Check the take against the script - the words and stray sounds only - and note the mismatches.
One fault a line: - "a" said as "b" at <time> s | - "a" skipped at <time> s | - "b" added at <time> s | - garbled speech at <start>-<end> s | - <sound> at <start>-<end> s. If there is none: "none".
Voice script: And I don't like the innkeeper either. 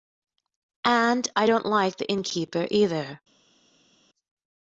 none